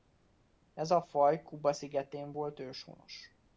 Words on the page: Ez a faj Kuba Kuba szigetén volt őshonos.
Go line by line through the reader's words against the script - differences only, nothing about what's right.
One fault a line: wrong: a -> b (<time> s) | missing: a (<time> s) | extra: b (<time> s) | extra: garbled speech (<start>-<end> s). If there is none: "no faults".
missing: Kuba (1.7 s)